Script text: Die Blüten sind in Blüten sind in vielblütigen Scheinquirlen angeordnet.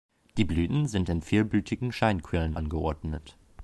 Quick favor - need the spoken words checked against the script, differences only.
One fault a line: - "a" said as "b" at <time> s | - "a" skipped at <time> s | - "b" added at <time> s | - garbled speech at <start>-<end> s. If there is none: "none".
- "Blüten sind in" skipped at 1.2 s